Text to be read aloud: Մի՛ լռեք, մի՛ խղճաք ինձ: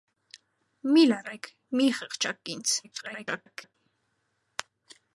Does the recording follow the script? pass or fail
fail